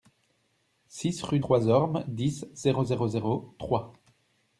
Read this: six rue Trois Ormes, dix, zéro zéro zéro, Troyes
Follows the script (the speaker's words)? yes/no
yes